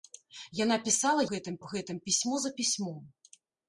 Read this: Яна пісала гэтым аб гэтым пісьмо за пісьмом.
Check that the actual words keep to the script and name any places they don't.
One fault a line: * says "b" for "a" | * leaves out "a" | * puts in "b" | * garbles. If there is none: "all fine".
all fine